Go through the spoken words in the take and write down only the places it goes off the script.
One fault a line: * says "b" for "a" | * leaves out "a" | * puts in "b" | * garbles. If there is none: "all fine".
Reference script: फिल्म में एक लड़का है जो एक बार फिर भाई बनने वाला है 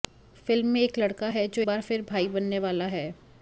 * leaves out "एक"